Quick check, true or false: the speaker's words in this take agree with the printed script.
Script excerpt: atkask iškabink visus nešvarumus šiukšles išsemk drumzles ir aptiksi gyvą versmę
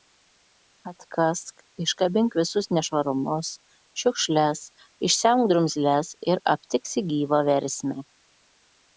true